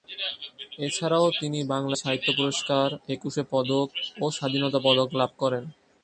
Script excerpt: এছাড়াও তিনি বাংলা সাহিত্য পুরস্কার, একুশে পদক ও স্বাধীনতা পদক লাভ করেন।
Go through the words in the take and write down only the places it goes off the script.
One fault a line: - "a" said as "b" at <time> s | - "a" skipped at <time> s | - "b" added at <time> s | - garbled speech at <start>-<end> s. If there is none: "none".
none